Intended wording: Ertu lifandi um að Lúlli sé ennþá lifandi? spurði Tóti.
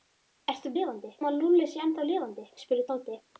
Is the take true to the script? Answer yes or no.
yes